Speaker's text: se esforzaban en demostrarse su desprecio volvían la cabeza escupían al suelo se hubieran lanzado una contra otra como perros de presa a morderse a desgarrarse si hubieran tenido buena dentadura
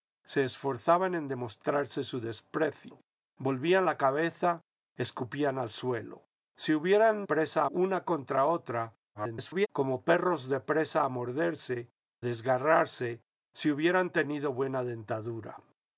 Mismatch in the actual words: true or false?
true